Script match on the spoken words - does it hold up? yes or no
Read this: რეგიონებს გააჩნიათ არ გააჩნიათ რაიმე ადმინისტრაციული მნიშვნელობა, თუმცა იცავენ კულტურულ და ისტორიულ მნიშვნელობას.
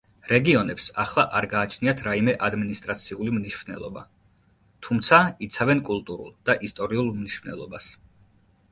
no